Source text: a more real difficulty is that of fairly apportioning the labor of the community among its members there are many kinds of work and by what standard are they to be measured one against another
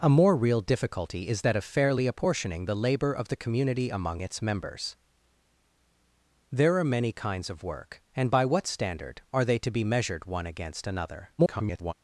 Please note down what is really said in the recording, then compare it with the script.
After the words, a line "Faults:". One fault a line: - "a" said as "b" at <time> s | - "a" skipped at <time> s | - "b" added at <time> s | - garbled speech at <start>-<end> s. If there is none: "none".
a more real difficulty is that of fairly apportioning the labor of the community among its members there are many kinds of work and by what standard are they to be measured one against another [garbled]
Faults:
- garbled speech at 11.4-11.9 s